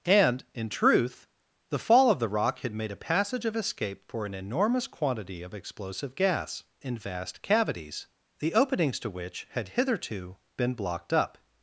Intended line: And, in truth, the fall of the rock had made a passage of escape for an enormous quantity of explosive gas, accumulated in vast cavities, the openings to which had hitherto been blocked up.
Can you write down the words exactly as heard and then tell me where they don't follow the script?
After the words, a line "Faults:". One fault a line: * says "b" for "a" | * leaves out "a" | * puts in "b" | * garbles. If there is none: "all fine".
And, in truth, the fall of the rock had made a passage of escape for an enormous quantity of explosive gas, in vast cavities, the openings to which had hitherto been blocked up.
Faults:
* leaves out "accumulated"